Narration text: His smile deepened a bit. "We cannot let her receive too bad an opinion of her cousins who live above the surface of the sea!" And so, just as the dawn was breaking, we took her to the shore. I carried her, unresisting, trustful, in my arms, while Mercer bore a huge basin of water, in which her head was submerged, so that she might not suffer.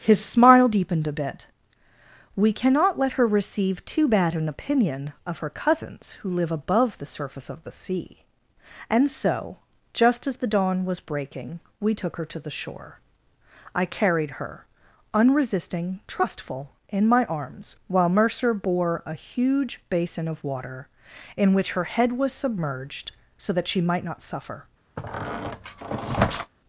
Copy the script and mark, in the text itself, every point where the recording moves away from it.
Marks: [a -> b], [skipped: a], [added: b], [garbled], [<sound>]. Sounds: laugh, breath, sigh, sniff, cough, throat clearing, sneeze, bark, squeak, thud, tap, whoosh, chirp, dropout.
His smile deepened a bit. "We cannot let her receive too bad an opinion of her cousins who live above the surface of the sea!" And so, just as the dawn was breaking, we took her to the shore. I carried her, unresisting, trustful, in my arms, while Mercer bore a huge basin of water, in which her head was submerged, so that she might not suffer. [squeak]